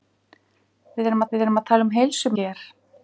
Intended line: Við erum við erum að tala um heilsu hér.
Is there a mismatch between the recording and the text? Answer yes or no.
no